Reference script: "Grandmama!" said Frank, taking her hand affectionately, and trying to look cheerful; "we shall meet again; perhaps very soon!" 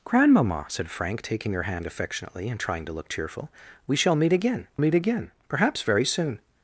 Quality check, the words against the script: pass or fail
fail